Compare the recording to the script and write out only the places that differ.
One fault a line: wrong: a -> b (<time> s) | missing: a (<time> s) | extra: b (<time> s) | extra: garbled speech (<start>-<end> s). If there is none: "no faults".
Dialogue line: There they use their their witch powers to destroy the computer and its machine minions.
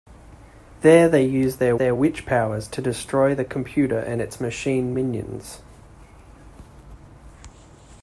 no faults